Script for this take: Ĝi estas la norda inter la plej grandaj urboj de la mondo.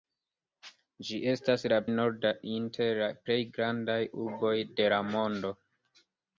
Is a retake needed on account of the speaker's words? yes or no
no